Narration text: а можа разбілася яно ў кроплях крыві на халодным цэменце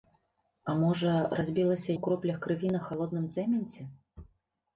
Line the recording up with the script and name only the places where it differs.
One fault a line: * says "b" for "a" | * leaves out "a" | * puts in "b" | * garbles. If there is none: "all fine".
* leaves out "яно"